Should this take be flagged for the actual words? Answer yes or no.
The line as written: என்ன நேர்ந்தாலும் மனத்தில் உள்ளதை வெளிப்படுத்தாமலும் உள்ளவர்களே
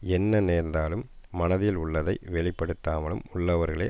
no